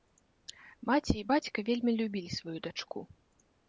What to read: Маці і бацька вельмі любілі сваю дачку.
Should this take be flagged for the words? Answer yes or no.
no